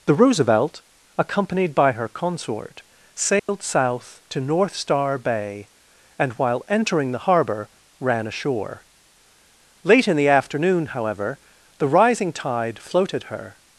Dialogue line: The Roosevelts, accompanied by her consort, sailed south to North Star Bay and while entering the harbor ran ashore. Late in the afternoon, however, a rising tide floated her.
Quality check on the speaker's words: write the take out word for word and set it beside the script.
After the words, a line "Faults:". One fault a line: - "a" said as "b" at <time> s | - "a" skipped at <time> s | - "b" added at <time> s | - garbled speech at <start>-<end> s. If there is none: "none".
The Roosevelt, accompanied by her consort, sailed south to North Star Bay and while entering the harbor ran ashore. Late in the afternoon, however, the rising tide floated her.
Faults:
- "Roosevelts" said as "Roosevelt" at 0.1 s
- "a" said as "the" at 11.8 s